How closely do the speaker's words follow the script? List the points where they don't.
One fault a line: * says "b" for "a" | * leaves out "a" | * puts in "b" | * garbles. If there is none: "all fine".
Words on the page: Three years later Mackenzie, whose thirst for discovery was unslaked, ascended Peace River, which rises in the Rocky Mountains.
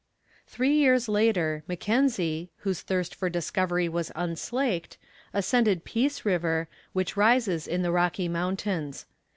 all fine